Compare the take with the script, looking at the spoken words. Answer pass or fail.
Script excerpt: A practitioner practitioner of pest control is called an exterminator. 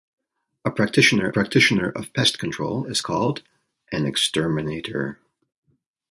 pass